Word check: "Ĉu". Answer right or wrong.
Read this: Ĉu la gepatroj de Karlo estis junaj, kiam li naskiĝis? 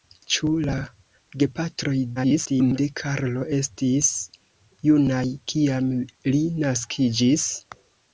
right